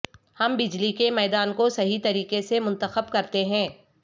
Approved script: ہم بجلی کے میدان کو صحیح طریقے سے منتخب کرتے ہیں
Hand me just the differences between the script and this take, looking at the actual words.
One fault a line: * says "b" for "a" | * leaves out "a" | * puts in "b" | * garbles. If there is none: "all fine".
all fine